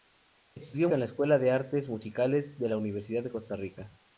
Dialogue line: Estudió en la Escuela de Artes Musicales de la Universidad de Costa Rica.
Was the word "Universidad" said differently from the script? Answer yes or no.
no